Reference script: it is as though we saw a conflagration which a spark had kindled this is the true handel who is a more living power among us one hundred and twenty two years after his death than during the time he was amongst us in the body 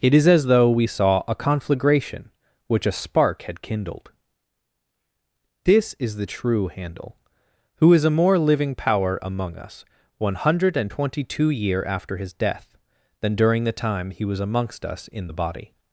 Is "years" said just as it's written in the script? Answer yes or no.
no